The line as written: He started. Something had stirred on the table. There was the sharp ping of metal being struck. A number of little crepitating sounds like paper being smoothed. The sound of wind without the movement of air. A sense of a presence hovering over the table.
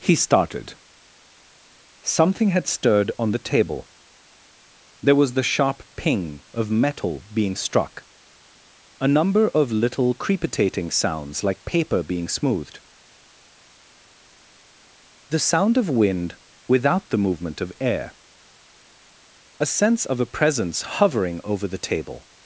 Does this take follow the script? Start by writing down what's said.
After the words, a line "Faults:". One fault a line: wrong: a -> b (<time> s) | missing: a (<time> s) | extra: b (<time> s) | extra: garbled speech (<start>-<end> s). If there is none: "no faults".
He started. Something had stirred on the table. There was the sharp ping of metal being struck. A number of little crepitating sounds like paper being smoothed. The sound of wind without the movement of air. A sense of a presence hovering over the table.
Faults:
no faults